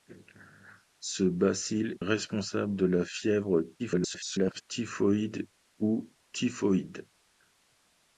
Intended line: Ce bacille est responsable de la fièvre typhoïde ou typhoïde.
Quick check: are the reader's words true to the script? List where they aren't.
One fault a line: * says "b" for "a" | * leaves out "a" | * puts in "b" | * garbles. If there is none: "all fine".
* leaves out "est"
* garbles